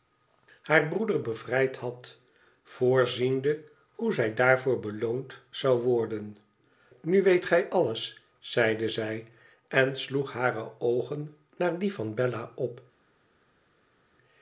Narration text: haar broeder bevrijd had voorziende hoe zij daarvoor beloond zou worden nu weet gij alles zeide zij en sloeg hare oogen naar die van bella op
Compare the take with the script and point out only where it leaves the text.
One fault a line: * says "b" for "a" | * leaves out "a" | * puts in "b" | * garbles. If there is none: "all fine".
all fine